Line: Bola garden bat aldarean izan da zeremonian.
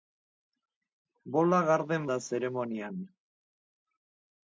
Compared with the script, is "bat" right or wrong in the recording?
wrong